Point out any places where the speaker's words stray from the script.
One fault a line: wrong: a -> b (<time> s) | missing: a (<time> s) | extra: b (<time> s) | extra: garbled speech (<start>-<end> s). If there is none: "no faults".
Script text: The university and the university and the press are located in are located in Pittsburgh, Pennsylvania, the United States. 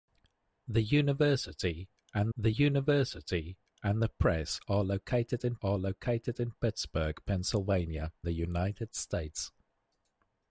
no faults